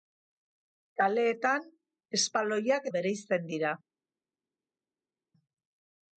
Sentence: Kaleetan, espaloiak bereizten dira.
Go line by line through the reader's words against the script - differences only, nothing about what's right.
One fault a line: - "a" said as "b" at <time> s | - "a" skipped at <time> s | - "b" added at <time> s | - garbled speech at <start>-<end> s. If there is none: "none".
none